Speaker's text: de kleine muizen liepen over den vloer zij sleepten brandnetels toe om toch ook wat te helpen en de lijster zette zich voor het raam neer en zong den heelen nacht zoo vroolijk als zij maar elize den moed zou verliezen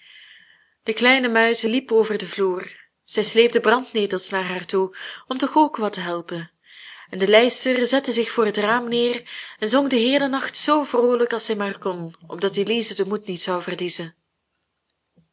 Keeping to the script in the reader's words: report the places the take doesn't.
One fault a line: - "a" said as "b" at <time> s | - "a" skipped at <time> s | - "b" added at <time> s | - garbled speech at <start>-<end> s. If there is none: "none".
- "naar haar" added at 4.3 s
- "kon opdat" added at 11.8 s
- "niet" added at 13.3 s